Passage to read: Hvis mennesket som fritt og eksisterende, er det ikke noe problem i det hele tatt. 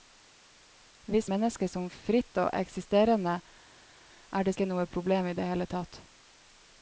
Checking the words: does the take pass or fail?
pass